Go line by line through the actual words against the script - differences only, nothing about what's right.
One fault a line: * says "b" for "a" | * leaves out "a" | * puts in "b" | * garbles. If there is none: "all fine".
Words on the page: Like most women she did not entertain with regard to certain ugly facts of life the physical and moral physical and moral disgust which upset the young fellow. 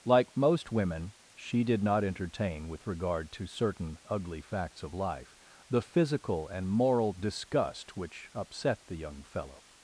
* leaves out "physical and moral"